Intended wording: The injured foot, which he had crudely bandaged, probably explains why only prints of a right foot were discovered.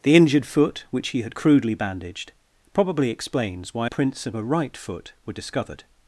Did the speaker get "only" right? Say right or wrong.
wrong